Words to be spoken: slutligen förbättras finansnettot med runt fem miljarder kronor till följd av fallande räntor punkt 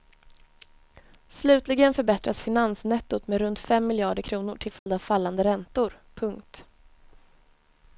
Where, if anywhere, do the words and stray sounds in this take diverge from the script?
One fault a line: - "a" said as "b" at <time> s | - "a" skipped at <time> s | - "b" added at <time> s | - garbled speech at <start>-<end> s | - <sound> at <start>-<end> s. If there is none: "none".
- dropout at 4.8-4.9 s